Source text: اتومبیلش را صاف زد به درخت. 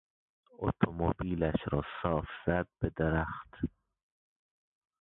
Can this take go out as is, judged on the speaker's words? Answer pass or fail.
pass